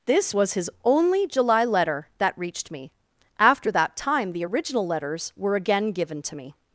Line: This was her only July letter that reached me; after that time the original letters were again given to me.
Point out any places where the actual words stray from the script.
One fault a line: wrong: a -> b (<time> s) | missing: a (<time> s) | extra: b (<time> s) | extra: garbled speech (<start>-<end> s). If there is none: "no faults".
wrong: her -> his (0.5 s)